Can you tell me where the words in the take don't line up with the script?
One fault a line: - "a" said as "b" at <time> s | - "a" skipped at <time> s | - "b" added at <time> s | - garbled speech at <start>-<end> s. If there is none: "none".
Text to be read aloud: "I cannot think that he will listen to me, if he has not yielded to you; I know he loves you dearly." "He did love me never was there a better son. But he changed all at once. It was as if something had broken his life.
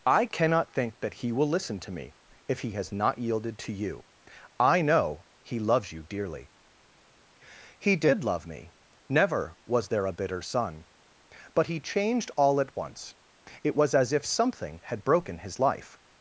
- "better" said as "bitter" at 10.1 s